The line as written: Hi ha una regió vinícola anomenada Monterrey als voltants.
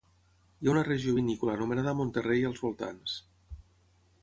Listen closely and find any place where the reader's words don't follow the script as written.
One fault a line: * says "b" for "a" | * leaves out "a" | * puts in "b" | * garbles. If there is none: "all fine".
all fine